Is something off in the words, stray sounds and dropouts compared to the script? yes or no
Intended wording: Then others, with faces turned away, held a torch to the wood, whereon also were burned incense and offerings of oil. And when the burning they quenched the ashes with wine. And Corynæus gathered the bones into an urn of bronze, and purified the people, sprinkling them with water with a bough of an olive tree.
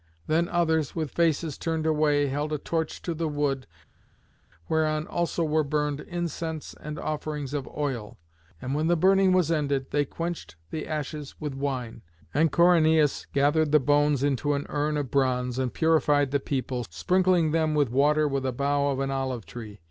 yes